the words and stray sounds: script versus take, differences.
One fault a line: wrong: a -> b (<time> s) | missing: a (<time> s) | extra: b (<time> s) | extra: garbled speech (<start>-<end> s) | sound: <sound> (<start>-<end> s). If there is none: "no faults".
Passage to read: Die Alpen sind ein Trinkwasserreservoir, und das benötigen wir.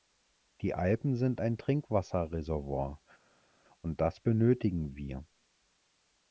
no faults